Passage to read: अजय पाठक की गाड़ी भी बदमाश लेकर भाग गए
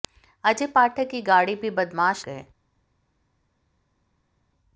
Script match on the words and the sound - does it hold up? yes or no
no